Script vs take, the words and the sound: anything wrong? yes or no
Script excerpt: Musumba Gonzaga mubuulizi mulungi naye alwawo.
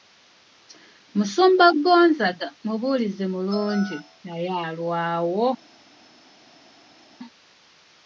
no